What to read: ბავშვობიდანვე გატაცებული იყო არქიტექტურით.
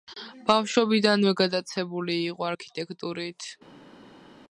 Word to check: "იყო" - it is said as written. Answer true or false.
true